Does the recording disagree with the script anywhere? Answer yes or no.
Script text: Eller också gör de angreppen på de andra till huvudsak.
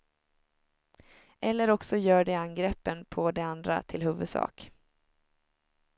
no